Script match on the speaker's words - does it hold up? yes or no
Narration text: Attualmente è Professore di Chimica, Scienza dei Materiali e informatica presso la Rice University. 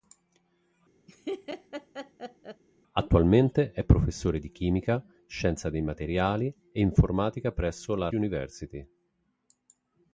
no